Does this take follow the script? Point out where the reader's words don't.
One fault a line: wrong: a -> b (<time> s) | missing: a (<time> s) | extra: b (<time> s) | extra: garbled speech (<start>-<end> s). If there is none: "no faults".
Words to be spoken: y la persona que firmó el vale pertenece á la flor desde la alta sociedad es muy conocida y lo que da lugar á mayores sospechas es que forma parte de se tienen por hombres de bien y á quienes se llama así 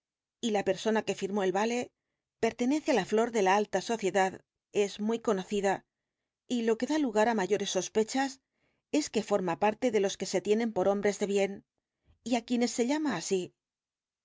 wrong: desde -> de (3.3 s)
extra: los que (10.0 s)